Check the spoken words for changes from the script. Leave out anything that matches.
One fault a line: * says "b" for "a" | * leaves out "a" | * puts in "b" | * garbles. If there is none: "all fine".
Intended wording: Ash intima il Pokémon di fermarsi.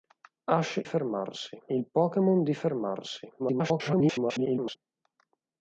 * says "fermarsi" for "intima"
* garbles